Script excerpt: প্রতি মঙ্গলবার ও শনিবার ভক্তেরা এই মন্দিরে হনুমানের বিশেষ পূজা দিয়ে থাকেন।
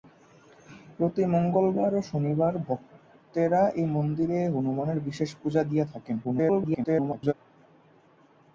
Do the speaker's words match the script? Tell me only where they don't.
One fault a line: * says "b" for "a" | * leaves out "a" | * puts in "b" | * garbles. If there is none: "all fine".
* garbles